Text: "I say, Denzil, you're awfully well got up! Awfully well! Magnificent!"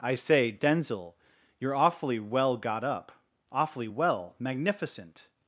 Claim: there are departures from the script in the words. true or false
false